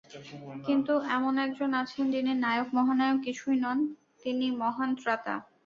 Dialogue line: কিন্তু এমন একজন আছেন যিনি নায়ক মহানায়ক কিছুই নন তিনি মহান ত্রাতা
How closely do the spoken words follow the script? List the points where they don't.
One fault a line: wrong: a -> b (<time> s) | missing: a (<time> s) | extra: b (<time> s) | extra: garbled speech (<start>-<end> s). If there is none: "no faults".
no faults